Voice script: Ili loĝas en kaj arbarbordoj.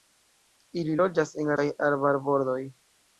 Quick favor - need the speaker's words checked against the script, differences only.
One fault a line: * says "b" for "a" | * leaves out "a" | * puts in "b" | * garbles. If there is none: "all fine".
all fine